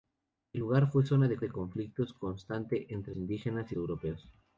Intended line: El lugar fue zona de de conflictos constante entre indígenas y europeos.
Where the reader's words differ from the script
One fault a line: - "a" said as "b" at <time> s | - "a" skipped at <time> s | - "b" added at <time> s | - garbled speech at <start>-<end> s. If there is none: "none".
none